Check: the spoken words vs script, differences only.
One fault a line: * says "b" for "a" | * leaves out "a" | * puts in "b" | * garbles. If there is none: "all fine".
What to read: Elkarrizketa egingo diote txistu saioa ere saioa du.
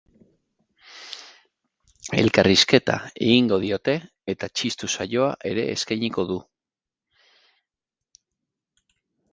* puts in "eta"
* says "eskainiko" for "saioa"